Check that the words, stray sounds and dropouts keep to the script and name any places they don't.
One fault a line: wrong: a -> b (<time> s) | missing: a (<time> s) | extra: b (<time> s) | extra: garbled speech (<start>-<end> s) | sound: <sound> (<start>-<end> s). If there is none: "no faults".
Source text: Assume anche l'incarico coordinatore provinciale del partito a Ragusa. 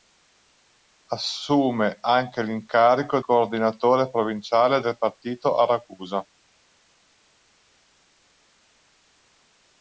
no faults